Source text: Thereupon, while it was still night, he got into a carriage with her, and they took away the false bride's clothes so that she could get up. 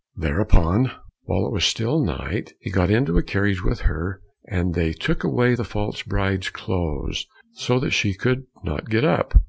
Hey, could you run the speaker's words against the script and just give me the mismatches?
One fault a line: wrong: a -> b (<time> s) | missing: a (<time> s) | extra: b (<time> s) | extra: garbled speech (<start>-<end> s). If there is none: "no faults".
extra: not (8.6 s)